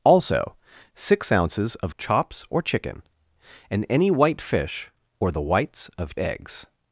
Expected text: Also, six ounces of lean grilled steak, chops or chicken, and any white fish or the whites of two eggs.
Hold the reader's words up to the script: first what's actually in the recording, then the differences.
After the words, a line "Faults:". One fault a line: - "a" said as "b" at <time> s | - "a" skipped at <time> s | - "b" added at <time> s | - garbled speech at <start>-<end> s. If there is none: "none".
Also, six ounces of chops or chicken, and any white fish or the whites of eggs.
Faults:
- "lean grilled steak" skipped at 1.9 s
- "two" skipped at 6.1 s